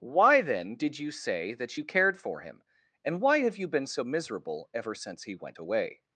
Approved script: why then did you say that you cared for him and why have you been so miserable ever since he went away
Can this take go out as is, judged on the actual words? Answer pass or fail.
pass